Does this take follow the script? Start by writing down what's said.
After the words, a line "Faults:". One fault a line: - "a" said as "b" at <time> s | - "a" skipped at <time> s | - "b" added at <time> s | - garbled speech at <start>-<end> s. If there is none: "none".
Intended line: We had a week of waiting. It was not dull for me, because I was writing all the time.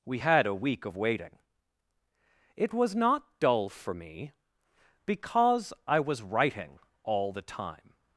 We had a week of waiting. It was not dull for me, because I was writing all the time.
Faults:
none